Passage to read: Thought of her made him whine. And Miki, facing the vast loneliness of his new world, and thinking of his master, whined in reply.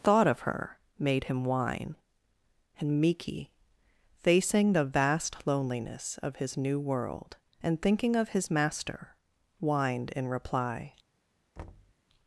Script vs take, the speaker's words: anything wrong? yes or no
no